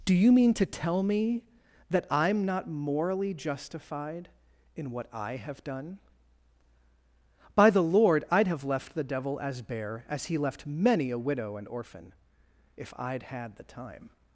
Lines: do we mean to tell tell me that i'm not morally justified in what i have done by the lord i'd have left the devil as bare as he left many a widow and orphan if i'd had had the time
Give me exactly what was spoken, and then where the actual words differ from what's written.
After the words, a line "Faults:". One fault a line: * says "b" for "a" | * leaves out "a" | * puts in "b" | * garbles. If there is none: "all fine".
do you mean to tell me that i'm not morally justified in what i have done by the lord i'd have left the devil as bare as he left many a widow and orphan if i'd had the time
Faults:
* says "you" for "we"
* leaves out "tell"
* leaves out "had"